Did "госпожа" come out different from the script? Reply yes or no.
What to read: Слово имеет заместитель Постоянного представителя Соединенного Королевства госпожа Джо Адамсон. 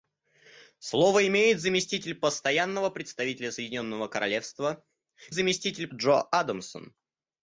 yes